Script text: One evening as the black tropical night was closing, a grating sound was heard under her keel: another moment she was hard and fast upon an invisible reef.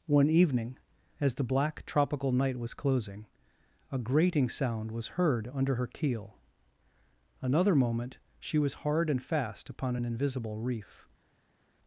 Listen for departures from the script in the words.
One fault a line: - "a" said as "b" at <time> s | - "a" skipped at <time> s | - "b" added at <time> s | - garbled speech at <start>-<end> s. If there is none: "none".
none